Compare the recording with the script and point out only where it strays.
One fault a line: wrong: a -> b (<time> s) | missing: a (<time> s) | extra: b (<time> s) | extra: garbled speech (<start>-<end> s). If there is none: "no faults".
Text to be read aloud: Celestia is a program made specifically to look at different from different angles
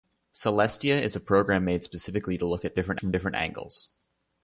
no faults